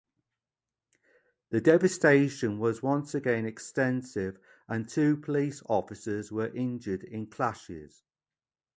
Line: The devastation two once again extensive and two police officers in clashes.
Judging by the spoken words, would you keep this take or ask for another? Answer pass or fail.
fail